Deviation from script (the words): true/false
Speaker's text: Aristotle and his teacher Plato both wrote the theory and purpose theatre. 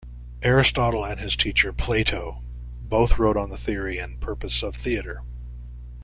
true